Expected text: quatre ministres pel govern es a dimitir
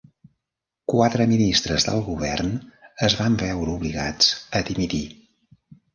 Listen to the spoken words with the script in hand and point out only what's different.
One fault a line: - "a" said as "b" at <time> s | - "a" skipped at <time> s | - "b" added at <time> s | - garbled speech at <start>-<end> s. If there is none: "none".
- "pel" said as "del" at 1.9 s
- "van veure obligats" added at 3.2 s